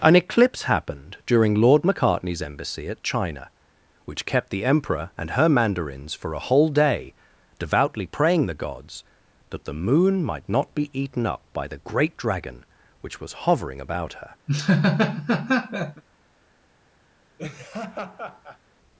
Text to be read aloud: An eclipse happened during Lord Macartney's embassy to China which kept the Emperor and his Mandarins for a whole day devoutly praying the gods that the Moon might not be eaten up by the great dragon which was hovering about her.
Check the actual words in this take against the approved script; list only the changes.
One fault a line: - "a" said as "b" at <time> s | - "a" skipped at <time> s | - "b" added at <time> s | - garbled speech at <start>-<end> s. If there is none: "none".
- "to" said as "at" at 2.9 s
- "his" said as "her" at 5.3 s